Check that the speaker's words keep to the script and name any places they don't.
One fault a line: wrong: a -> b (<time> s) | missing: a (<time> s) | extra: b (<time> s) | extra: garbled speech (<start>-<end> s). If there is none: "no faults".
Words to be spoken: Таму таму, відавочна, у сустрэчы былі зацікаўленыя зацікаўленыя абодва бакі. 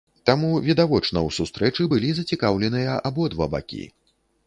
missing: таму (0.5 s)
missing: зацікаўленыя (3.0 s)